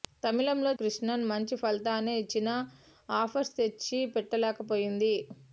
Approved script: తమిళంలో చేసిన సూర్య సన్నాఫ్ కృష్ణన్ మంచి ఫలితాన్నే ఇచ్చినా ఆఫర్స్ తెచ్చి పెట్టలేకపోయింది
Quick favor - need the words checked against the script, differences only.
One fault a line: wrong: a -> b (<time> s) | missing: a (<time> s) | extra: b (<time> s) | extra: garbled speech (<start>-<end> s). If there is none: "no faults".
missing: చేసిన సూర్య సన్నాఫ్ (0.7 s)